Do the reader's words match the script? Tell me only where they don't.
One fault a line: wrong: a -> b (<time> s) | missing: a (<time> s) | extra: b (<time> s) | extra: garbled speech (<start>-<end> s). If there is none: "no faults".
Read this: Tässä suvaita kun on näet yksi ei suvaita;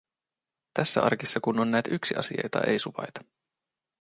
wrong: suvaita -> arkissa (1.0 s)
extra: asia jota (2.2 s)